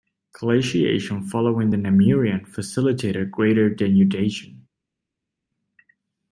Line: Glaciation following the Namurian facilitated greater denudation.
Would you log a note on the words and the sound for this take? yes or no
no